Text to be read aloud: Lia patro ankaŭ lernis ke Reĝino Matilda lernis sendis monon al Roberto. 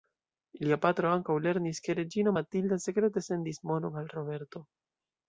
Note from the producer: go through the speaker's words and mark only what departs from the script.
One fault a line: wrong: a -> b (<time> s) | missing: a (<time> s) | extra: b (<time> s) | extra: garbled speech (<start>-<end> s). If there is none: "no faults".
wrong: lernis -> sekrete (2.8 s)